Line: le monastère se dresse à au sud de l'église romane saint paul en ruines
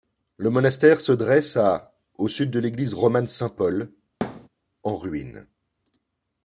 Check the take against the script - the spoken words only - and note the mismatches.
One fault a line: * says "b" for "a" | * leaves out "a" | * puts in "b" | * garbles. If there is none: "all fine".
all fine